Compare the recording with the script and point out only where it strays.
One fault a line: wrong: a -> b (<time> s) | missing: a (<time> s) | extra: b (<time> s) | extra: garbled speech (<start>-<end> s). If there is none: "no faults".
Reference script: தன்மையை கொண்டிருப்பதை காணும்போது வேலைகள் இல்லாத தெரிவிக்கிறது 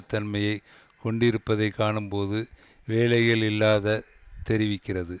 no faults